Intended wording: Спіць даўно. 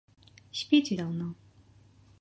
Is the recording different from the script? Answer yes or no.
no